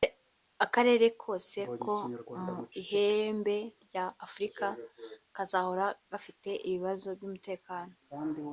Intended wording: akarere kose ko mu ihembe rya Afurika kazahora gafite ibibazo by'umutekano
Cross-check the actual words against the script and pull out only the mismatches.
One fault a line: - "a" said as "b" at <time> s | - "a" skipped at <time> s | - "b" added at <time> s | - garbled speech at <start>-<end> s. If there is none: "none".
none